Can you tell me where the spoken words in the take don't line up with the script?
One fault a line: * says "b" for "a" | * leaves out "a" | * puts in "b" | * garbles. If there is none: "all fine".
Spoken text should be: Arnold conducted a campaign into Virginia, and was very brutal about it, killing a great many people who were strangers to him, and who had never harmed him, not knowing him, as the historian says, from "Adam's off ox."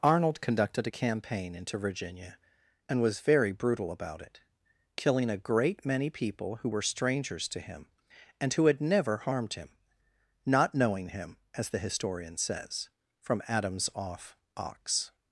all fine